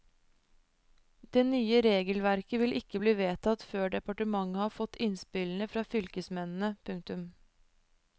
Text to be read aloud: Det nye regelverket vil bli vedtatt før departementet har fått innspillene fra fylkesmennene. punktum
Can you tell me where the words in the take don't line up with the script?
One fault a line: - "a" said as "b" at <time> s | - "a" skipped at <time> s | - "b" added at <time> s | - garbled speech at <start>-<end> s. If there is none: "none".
- "ikke" added at 2.8 s